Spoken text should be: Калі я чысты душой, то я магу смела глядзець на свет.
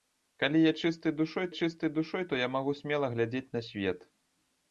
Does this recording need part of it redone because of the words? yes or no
yes